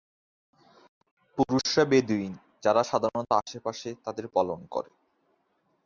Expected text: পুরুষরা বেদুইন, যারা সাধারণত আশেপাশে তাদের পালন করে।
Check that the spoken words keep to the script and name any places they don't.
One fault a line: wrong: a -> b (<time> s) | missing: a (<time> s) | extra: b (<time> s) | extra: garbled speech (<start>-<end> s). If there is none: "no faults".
no faults